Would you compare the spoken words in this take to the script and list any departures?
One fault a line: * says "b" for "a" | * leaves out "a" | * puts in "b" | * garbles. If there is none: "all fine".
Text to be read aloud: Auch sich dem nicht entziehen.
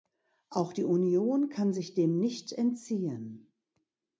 * puts in "die Union kann"